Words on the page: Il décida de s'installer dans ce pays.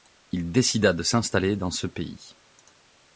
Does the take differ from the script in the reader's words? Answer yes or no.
no